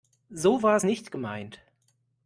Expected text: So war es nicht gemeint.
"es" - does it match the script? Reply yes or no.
yes